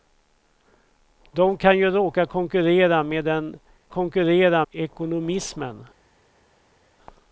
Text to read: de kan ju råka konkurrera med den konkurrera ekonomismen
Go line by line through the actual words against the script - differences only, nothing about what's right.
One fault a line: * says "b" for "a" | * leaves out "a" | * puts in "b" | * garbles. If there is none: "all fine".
all fine